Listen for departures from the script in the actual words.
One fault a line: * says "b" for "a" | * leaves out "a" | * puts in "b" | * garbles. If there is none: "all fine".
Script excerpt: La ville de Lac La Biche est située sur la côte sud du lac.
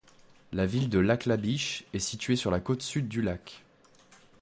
all fine